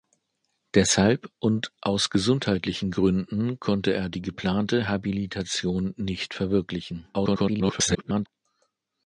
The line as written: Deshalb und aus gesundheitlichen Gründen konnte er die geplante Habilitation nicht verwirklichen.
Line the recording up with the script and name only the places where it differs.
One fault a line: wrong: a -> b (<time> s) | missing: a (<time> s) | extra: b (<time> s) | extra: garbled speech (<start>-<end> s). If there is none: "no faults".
extra: garbled speech (7.1-8.3 s)